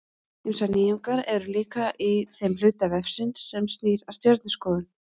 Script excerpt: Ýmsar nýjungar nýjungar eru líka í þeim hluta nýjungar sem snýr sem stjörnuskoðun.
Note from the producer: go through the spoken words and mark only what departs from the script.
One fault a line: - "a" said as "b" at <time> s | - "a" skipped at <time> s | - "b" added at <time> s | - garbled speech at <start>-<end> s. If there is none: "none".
- "nýjungar" skipped at 1.2 s
- "nýjungar" said as "vefsins" at 3.0 s
- "sem" said as "að" at 4.1 s